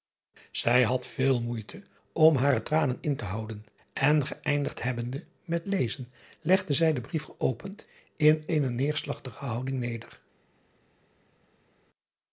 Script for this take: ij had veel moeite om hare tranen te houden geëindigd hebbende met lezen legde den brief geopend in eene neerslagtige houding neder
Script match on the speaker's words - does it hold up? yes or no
no